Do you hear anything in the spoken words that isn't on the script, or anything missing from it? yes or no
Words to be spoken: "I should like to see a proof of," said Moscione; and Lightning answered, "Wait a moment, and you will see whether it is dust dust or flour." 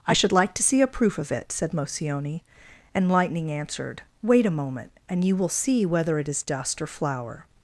yes